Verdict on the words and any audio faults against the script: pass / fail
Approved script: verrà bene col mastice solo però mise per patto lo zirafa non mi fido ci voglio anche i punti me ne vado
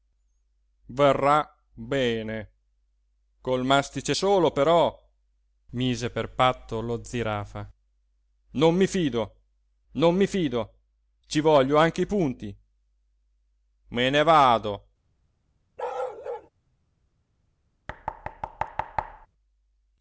fail